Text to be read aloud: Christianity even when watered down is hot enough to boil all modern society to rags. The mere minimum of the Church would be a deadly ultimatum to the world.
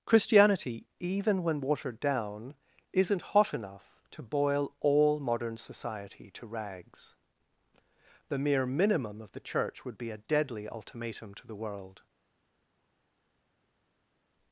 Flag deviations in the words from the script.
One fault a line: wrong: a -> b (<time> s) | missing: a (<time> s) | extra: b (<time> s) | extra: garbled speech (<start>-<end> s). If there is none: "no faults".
wrong: is -> isn't (2.9 s)